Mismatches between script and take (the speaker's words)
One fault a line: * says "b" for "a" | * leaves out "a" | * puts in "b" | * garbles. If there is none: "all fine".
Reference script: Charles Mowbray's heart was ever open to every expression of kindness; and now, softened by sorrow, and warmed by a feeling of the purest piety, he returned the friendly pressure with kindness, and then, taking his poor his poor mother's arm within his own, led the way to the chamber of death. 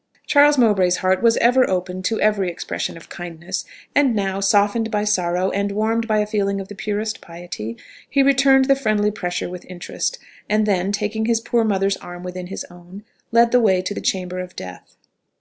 * says "interest" for "kindness"
* leaves out "his poor"